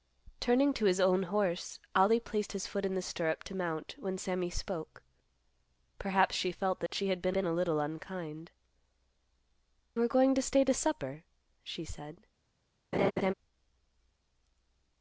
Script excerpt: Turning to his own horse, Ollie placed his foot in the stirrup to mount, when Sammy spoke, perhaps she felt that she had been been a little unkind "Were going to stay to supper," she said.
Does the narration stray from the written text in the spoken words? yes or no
no